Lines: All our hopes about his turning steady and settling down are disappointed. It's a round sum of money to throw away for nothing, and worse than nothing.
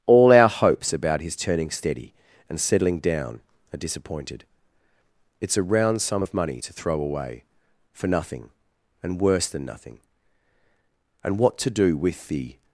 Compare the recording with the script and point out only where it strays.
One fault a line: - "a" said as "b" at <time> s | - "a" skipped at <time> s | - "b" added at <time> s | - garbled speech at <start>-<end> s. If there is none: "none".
- "And what to do with the" added at 11.2 s